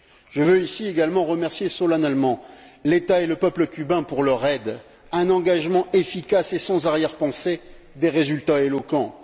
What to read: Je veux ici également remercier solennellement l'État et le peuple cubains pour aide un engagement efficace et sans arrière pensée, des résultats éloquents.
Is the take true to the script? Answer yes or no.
no